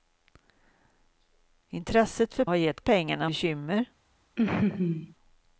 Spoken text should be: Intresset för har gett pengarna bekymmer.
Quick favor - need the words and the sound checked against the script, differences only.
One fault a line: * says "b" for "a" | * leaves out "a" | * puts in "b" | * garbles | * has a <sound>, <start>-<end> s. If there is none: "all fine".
* has a laugh, 4.4-5.1 s